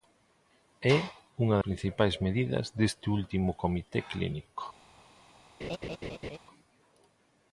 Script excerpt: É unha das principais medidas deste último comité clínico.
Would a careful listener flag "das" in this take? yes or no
yes